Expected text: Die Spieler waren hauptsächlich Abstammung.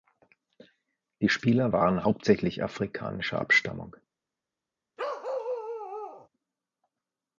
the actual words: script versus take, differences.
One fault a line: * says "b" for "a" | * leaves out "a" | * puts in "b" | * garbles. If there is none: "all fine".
* puts in "afrikanischer"